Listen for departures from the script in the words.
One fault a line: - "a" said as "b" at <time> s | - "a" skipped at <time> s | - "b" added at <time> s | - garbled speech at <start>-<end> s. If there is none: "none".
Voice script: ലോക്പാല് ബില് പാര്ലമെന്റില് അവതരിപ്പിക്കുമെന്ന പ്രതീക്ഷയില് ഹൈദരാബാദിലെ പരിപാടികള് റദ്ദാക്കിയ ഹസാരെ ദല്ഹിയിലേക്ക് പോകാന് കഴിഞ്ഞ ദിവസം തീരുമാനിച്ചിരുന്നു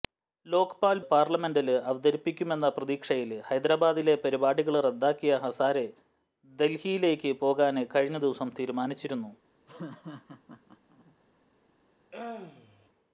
- "ബില്" skipped at 1.0 s